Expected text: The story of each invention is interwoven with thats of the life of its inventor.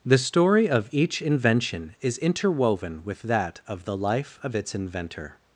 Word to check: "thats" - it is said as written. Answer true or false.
false